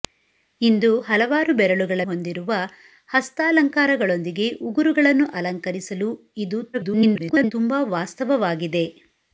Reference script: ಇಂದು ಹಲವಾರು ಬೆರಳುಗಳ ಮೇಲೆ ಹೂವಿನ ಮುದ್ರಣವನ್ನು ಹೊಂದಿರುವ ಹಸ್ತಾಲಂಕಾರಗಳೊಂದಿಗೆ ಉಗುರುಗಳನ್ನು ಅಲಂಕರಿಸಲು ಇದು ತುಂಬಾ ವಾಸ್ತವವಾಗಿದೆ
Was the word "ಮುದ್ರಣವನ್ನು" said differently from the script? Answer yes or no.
yes